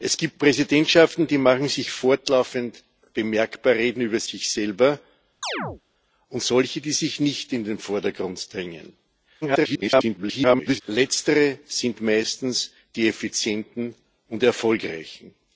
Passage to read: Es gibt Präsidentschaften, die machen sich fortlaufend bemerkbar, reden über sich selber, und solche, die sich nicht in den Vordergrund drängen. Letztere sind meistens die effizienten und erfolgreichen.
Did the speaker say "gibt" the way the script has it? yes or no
yes